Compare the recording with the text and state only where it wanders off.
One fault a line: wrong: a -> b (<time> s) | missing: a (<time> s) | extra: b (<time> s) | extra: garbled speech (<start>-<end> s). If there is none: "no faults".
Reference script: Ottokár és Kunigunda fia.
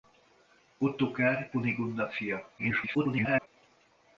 missing: és (1.5 s)
extra: garbled speech (2.6-3.5 s)